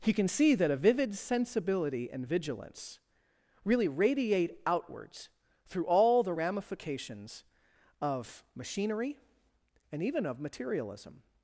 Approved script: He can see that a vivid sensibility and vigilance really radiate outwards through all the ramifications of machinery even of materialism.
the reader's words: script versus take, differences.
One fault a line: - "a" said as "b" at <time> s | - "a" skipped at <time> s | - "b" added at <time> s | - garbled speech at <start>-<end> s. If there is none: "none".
- "and" added at 9.9 s